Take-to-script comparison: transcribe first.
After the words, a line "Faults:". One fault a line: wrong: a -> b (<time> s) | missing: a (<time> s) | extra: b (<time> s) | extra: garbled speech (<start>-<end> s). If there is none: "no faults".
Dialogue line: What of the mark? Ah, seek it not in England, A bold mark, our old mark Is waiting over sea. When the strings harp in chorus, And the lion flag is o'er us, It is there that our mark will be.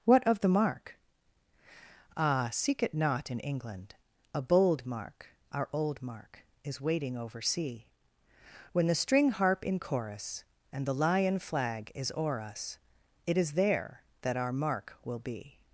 What of the mark? Ah, seek it not in England, A bold mark, our old mark Is waiting over sea. When the string harp in chorus, And the lion flag is o'er us, It is there that our mark will be.
Faults:
wrong: strings -> string (9.0 s)